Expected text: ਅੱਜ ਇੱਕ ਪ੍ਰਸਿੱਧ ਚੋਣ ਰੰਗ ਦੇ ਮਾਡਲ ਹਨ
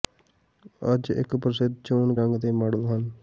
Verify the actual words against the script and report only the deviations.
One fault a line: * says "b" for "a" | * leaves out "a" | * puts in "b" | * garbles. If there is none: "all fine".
all fine